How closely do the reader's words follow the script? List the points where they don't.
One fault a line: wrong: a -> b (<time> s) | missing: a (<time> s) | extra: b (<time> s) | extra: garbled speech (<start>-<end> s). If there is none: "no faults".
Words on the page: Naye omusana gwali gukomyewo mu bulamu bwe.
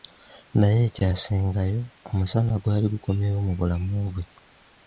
extra: ekyasingayo (0.9 s)